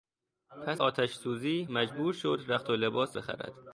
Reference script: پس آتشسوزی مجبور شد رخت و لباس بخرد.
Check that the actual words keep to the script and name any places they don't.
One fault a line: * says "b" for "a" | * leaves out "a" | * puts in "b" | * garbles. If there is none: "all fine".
all fine